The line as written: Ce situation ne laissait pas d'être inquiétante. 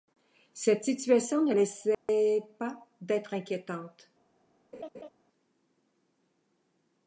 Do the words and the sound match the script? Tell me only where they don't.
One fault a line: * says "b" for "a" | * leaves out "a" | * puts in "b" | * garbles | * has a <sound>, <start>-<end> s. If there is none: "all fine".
* says "Cette" for "Ce"
* has a dropout, 1.9-2.1 s
* has a laugh, 4.7-5.1 s